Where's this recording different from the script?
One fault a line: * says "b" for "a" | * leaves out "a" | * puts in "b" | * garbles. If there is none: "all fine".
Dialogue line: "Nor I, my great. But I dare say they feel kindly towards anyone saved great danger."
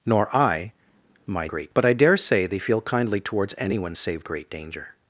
all fine